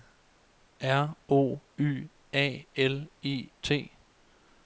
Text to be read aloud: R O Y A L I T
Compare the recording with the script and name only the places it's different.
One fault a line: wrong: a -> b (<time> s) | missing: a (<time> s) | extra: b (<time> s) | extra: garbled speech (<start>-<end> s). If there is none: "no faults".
no faults